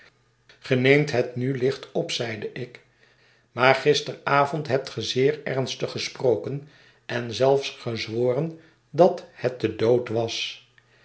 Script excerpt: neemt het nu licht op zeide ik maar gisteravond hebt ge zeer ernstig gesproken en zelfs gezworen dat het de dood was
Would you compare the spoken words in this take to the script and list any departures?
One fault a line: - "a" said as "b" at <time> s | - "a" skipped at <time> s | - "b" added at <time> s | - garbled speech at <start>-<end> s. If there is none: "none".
none